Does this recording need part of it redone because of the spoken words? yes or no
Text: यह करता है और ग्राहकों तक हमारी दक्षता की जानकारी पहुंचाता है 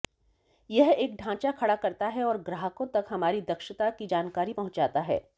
yes